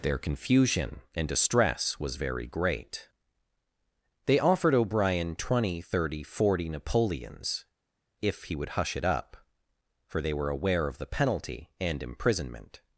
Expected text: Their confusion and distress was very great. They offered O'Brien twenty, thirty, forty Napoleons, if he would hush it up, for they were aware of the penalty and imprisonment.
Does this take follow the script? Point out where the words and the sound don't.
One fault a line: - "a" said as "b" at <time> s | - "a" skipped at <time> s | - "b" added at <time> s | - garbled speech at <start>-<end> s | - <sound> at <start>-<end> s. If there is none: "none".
none